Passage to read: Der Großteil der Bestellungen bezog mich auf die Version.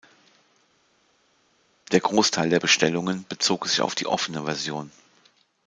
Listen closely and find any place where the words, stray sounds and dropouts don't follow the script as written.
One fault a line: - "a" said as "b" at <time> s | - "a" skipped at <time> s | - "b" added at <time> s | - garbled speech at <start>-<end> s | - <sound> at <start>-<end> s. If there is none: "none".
- "mich" said as "sich" at 3.7 s
- "offene" added at 4.1 s